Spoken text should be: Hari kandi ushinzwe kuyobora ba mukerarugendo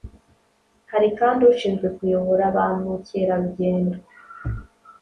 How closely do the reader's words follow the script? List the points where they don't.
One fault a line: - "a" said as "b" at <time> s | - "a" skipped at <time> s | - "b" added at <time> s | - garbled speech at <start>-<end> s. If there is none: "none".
none